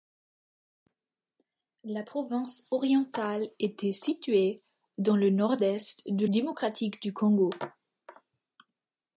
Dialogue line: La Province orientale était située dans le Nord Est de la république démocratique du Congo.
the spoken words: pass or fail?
fail